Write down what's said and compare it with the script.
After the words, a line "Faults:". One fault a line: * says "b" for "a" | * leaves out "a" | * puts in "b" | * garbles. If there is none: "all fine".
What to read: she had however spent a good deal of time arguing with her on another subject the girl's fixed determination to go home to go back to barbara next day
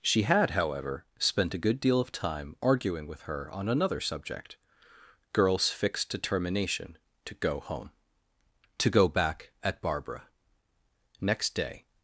she had however spent a good deal of time arguing with her on another subject girl's fixed determination to go home to go back at barbara next day
Faults:
* leaves out "the"
* says "at" for "to"